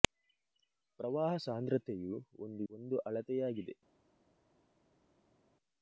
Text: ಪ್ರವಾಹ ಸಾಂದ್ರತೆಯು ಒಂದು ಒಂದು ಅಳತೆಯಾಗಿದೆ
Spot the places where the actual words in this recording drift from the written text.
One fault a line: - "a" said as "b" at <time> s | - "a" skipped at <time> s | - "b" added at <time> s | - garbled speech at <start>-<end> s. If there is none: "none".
none